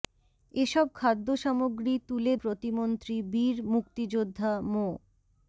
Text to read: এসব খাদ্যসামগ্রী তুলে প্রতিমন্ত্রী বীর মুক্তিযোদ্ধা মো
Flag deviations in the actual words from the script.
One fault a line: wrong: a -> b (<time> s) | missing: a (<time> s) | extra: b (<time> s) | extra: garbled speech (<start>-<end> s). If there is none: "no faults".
no faults